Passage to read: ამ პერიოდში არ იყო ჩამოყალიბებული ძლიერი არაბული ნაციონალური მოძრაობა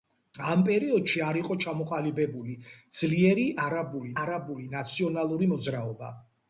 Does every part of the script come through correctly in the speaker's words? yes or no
no